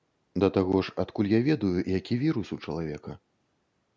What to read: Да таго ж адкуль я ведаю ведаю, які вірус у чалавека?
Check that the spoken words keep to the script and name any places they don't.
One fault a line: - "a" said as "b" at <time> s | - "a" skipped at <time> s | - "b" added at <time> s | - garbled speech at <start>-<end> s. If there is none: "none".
- "ведаю" skipped at 1.8 s